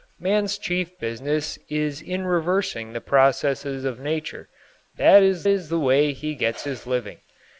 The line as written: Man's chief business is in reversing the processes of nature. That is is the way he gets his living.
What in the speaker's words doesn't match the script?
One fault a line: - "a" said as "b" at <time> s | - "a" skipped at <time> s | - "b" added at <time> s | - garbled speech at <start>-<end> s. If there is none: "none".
none